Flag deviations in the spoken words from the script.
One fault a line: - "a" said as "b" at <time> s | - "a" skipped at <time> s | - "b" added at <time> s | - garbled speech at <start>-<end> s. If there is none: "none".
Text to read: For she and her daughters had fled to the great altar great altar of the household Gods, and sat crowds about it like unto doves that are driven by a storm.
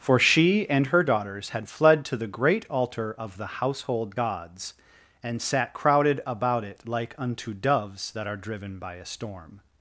- "great altar" skipped at 3.1 s
- "crowds" said as "crowded" at 5.7 s